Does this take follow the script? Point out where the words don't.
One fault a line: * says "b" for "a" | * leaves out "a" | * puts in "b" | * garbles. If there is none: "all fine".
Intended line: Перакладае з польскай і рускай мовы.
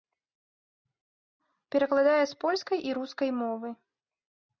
all fine